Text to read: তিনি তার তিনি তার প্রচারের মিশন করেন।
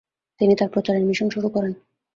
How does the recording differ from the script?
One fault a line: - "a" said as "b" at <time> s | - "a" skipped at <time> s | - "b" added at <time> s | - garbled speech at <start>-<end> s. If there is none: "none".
- "তিনি তার" skipped at 0.7 s
- "শুরু" added at 1.3 s